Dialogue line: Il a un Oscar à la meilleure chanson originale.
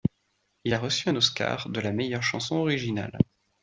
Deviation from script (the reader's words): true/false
true